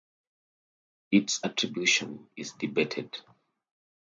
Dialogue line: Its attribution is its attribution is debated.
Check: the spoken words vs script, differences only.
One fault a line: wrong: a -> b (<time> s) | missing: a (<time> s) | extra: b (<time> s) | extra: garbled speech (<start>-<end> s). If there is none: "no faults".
missing: its attribution is (2.5 s)